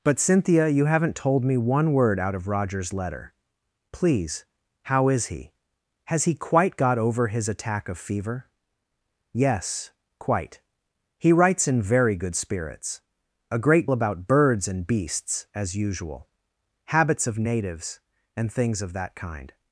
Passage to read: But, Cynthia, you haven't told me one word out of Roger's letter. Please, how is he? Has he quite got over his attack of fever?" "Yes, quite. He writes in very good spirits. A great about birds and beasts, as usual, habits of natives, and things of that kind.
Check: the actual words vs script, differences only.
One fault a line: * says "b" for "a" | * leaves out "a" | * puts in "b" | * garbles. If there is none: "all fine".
all fine